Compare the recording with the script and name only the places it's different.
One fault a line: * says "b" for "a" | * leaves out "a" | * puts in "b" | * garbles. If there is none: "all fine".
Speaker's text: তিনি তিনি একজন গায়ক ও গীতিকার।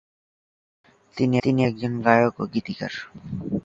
all fine